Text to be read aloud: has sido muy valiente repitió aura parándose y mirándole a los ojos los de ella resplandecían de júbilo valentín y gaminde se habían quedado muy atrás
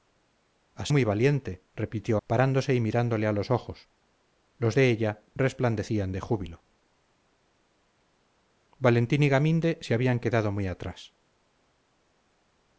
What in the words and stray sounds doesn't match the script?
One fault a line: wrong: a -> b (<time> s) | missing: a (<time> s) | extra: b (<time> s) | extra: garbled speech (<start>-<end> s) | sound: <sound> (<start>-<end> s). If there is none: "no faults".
missing: sido (0.9 s)
missing: aura (2.2 s)